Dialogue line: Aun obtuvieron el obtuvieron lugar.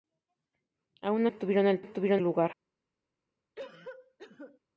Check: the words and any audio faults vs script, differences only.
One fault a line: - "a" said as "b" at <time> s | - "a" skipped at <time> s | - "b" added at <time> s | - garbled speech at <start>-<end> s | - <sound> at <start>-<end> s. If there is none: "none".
- cough at 3.6-4.6 s